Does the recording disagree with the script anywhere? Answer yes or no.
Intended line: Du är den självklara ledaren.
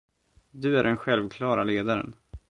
no